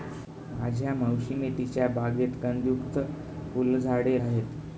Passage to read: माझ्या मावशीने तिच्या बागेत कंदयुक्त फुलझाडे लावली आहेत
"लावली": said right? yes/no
no